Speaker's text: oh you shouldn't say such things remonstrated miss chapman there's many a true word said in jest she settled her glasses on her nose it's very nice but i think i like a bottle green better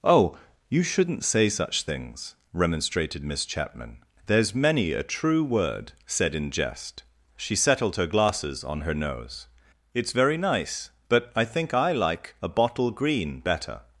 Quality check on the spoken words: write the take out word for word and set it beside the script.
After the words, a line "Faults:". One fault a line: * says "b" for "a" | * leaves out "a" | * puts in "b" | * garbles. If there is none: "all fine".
oh you shouldn't say such things remonstrated miss chapman there's many a true word said in jest she settled her glasses on her nose it's very nice but i think i like a bottle green better
Faults:
all fine